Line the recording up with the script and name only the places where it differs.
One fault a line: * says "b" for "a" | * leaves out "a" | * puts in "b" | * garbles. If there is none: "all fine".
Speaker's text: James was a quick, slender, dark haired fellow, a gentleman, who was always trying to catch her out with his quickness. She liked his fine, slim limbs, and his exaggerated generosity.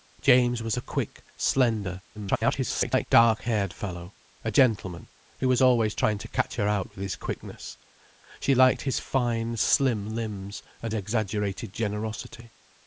* garbles
* leaves out "his"